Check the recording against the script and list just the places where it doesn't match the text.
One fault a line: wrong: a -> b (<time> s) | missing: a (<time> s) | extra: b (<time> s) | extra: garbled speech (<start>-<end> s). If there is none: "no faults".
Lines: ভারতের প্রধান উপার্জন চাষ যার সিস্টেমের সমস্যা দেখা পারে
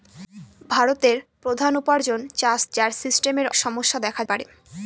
no faults